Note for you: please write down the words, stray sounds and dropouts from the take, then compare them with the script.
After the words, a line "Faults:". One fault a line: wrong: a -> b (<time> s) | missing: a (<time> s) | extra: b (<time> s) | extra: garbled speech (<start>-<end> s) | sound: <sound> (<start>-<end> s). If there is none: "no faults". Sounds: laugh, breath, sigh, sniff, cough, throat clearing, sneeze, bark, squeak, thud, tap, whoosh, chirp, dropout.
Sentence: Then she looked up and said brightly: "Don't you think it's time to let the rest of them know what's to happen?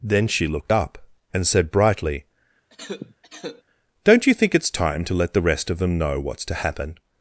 Then she looked up and said brightly: "Don't you think it's time to let the rest of them know what's to happen?
Faults:
sound: cough (2.7-3.6 s)